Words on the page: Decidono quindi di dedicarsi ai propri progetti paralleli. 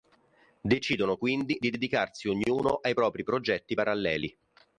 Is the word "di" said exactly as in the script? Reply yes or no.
yes